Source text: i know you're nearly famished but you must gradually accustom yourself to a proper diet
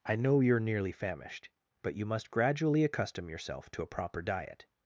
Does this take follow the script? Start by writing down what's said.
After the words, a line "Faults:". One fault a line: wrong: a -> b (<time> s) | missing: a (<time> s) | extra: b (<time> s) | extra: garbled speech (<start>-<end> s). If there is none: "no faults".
i know you're nearly famished but you must gradually accustom yourself to a proper diet
Faults:
no faults